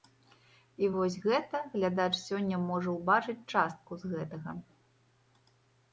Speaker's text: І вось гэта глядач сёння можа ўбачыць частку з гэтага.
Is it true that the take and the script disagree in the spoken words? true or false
false